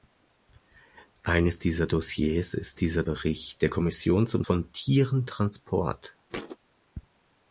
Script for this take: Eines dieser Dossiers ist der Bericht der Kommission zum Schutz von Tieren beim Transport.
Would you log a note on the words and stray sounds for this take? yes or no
yes